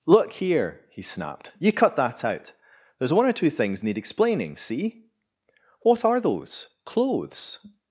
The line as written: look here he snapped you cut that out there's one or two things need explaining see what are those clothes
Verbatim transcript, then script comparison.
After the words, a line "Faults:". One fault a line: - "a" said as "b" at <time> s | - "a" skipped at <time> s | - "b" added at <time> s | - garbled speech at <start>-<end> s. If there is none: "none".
look here he snapped you cut that out there's one or two things need explaining see what are those clothes
Faults:
none